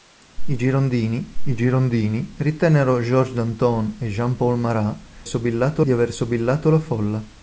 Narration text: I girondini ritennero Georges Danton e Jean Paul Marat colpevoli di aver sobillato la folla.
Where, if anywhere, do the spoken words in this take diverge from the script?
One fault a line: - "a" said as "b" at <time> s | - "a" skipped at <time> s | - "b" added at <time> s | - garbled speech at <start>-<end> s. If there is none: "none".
- "I girondini" added at 1.4 s
- "colpevoli" said as "sobillato" at 5.2 s